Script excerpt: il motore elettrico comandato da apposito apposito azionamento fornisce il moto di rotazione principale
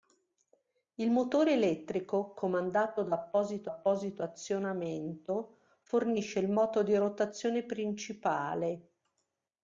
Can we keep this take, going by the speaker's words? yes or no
yes